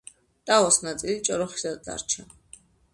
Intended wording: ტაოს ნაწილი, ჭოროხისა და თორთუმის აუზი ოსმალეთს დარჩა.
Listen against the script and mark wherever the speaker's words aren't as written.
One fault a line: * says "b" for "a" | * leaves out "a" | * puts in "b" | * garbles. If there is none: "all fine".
* leaves out "თორთუმის აუზი ოსმალეთს"